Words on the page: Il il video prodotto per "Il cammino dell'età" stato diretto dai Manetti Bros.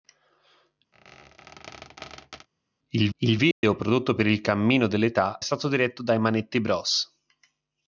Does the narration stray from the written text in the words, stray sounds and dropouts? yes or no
yes